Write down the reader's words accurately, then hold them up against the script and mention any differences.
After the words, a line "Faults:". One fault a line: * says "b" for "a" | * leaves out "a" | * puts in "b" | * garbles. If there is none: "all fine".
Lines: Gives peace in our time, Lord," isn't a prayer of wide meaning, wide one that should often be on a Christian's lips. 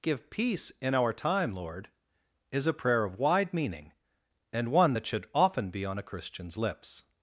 Give peace in our time, Lord," is a prayer of wide meaning, and one that should often be on a Christian's lips.
Faults:
* says "Give" for "Gives"
* says "is" for "isn't"
* says "and" for "wide"